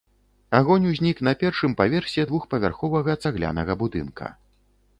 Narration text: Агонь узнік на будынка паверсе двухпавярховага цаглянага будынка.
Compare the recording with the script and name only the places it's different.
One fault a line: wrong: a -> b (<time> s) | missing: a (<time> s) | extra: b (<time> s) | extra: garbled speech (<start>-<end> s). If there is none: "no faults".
wrong: будынка -> першым (1.4 s)